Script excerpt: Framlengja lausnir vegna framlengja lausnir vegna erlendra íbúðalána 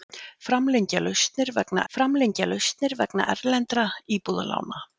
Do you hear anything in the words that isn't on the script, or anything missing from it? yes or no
no